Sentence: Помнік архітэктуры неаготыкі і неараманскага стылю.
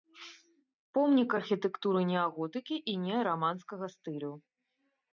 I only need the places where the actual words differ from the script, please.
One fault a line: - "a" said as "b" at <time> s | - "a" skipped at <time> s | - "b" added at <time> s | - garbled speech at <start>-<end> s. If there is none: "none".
none